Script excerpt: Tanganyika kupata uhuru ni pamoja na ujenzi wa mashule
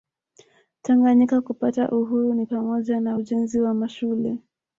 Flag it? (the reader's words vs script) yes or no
no